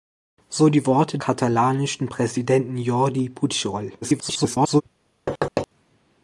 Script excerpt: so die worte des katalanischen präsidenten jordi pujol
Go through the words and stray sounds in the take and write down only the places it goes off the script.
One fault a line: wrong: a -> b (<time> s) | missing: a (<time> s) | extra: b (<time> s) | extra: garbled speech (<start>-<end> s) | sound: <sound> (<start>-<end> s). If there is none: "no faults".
missing: des (1.2 s)
extra: garbled speech (4.0-4.8 s)
sound: thud (5.3-5.7 s)